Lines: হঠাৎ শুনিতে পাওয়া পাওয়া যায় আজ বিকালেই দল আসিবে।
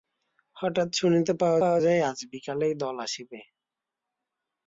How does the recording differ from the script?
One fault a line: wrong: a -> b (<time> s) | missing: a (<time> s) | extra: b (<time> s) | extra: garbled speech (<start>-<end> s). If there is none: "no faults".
no faults